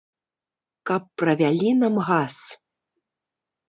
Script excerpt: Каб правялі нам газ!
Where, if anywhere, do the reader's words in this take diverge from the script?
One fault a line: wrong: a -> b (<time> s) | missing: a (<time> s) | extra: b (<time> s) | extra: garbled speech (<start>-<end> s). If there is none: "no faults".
no faults